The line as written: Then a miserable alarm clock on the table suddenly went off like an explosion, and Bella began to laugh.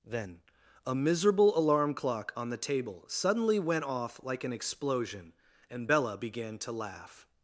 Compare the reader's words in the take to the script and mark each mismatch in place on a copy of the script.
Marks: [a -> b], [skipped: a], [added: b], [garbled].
Then a miserable alarm clock on the table suddenly went off like an explosion, and Bella began to laugh.